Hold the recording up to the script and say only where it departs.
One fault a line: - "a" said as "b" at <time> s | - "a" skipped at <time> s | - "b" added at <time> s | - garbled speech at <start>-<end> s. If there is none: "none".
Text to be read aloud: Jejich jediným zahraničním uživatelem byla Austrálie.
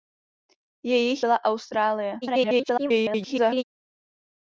- "jediným zahraničním uživatelem" skipped at 1.2 s
- garbled speech at 2.2-3.6 s